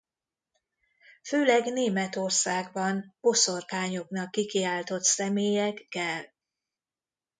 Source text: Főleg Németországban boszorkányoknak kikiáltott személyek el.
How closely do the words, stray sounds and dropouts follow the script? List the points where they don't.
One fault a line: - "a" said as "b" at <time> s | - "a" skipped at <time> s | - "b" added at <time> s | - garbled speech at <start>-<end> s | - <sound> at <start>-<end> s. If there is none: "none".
none